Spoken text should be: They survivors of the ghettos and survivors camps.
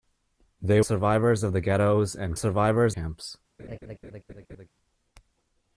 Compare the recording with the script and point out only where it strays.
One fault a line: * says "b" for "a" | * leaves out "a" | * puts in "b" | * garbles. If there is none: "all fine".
all fine